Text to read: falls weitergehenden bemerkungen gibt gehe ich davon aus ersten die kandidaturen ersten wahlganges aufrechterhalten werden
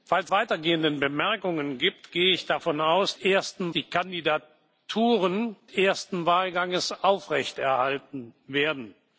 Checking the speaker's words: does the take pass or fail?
pass